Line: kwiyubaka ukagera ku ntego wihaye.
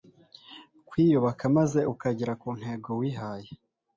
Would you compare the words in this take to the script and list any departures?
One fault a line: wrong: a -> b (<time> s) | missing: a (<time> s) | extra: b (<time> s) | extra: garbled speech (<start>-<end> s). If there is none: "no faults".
extra: maze (1.6 s)